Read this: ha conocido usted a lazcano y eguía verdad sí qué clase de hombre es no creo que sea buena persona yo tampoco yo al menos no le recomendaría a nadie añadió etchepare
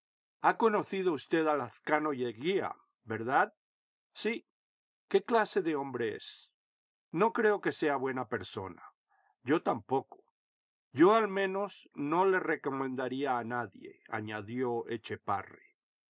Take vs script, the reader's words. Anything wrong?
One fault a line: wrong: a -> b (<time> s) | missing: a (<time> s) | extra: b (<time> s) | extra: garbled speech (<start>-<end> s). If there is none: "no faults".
no faults